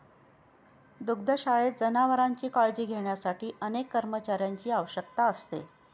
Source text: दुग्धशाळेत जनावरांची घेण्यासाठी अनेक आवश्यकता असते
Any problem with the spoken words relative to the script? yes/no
yes